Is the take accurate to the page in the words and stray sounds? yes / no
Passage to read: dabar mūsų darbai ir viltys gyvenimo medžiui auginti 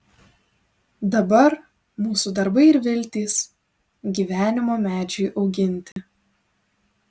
no